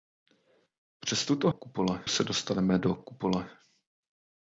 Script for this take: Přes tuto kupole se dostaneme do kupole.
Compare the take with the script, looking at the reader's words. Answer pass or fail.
pass